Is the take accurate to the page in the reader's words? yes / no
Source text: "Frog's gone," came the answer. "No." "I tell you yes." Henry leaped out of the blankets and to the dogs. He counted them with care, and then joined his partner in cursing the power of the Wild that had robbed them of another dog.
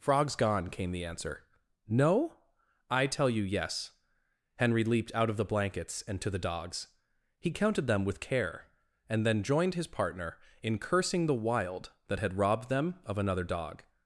no